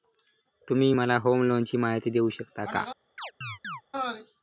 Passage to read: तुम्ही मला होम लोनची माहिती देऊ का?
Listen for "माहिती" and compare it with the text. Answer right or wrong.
right